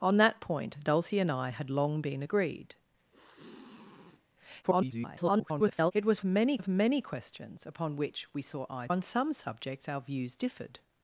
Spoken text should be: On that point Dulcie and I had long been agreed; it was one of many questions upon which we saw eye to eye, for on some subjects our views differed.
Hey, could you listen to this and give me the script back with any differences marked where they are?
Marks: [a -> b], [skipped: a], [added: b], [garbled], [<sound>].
On that point Dulcie and I had long been agreed; [sniff] [garbled] it was [one -> many] of many questions upon which we saw eye [skipped: to eye, for] on some subjects our views differed.